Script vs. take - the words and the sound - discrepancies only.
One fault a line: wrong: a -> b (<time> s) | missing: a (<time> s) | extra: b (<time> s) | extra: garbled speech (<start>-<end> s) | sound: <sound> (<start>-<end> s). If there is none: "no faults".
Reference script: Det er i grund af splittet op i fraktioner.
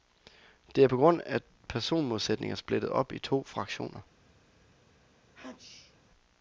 wrong: i -> på (0.8 s)
extra: personmodsætninger (1.7 s)
extra: to (3.2 s)
sound: sneeze (5.3-6.0 s)